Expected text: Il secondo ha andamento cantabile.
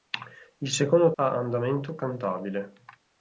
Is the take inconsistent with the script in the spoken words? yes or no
no